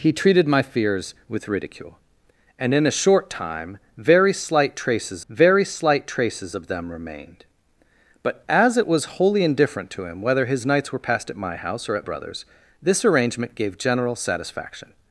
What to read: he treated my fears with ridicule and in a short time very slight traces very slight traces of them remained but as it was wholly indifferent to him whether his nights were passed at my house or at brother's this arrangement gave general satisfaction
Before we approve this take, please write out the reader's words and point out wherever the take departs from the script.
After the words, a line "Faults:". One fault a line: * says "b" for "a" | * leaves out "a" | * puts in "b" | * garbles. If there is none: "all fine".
he treated my fears with ridicule and in a short time very slight traces very slight traces of them remained but as it was wholly indifferent to him whether his nights were passed at my house or at brother's this arrangement gave general satisfaction
Faults:
all fine